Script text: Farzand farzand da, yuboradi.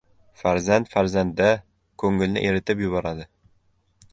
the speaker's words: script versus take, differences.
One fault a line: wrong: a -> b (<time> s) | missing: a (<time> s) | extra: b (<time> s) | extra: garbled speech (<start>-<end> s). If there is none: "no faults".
extra: ko‘ngilni eritib (2.0 s)